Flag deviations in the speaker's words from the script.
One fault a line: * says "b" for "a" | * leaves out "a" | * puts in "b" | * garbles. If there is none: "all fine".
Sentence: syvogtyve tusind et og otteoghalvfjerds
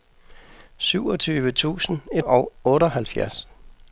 all fine